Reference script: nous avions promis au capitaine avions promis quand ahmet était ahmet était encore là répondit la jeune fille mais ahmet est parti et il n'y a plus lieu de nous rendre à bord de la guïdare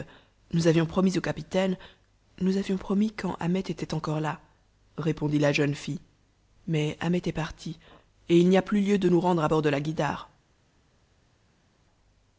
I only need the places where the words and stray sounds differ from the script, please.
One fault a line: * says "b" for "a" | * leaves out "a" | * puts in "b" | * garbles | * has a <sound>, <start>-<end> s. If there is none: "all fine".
* puts in "nous"
* leaves out "ahmet était"